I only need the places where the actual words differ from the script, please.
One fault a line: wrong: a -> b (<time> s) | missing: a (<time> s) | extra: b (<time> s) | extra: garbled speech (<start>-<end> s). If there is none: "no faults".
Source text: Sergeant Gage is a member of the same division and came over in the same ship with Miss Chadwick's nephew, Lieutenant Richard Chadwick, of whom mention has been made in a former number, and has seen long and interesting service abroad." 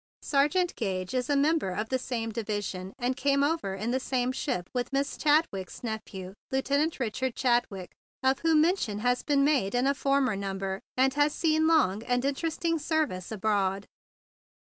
no faults